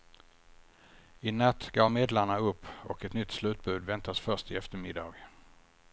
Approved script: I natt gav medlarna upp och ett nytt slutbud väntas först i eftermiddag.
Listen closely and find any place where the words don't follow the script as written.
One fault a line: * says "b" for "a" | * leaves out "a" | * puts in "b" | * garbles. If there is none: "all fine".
all fine